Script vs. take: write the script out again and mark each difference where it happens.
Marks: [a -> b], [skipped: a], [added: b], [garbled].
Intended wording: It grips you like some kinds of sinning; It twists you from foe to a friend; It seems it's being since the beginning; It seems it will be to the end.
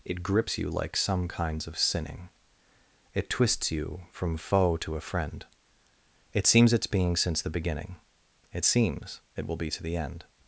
It grips you like some kinds of sinning; It twists you from foe to a friend; It seems it's being since the beginning; It seems it will be to the end.